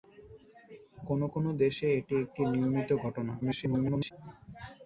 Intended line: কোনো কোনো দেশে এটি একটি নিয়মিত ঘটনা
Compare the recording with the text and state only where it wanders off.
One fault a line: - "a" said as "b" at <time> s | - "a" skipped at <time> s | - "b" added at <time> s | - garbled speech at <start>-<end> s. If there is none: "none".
- garbled speech at 3.4-4.1 s